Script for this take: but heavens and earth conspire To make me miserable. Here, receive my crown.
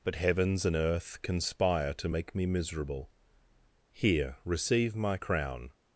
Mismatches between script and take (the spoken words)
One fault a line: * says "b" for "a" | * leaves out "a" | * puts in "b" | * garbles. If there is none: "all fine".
all fine